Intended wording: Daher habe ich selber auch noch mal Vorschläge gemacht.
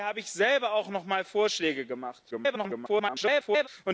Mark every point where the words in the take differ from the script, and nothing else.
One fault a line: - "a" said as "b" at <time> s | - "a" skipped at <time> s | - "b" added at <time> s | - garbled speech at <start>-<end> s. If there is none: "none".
- garbled speech at 2.3-3.7 s